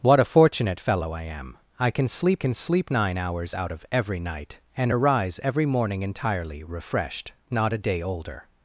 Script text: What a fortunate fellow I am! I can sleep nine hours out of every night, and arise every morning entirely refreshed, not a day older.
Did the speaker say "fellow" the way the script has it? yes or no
yes